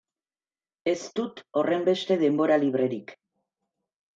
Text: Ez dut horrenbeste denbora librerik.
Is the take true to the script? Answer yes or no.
yes